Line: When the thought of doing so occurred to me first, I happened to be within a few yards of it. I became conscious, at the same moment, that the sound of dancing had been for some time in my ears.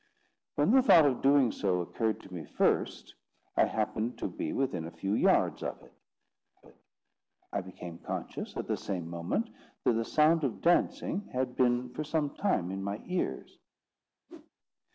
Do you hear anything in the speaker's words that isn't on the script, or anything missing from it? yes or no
yes